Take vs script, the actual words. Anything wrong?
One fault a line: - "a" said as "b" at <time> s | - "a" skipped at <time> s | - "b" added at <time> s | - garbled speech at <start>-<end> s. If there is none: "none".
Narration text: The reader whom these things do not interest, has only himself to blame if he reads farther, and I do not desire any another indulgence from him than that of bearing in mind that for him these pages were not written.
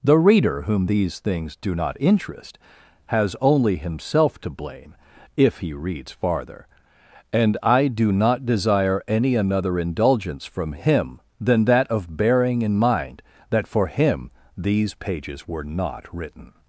none